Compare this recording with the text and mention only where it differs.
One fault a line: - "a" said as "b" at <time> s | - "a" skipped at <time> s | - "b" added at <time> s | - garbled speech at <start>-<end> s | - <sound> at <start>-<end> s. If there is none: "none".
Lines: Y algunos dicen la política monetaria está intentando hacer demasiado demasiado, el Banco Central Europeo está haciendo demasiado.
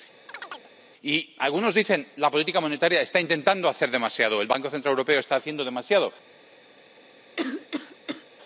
- chirp at 0.3-0.7 s
- "demasiado" skipped at 4.4 s
- cough at 7.4-8.2 s